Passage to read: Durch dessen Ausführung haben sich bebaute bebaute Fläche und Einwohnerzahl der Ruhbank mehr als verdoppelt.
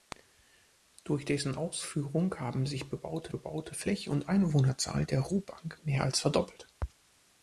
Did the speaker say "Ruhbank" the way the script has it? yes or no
yes